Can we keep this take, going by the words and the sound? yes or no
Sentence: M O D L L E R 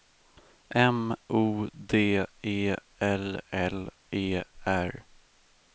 no